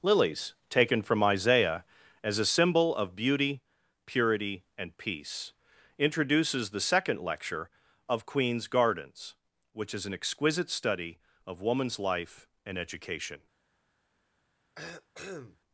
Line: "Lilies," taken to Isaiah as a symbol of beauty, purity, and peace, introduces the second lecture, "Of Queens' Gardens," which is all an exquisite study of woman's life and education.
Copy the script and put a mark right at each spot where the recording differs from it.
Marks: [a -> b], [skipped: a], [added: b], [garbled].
"Lilies," taken [to -> from] Isaiah as a symbol of beauty, purity, and peace, introduces the second lecture, "Of Queens' Gardens," which is [skipped: all] an exquisite study of woman's life and education.